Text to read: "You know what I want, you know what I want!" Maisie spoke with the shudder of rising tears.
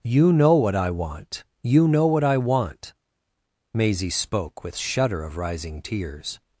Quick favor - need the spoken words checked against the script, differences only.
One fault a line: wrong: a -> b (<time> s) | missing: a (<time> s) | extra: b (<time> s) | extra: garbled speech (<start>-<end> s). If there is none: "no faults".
missing: the (4.8 s)